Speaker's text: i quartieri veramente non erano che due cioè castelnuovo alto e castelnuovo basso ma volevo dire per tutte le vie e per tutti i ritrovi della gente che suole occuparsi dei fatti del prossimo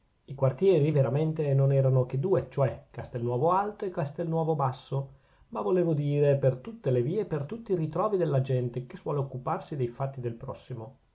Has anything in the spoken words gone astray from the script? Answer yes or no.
no